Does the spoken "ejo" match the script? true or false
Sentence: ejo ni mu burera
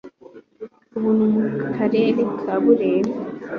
false